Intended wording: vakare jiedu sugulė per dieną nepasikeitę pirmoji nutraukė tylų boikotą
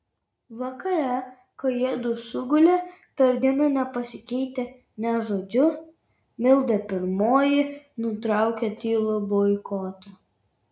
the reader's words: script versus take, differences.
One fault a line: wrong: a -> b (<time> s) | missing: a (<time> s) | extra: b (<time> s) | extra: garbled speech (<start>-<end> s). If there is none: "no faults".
extra: kai (1.6 s)
extra: nė žodžiu milda (5.1 s)